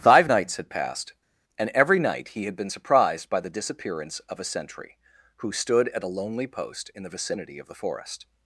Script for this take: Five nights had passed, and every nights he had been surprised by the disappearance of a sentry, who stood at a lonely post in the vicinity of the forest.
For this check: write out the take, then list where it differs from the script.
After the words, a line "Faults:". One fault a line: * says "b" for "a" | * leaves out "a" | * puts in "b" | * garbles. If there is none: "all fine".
Five nights had passed, and every night he had been surprised by the disappearance of a sentry, who stood at a lonely post in the vicinity of the forest.
Faults:
* says "night" for "nights"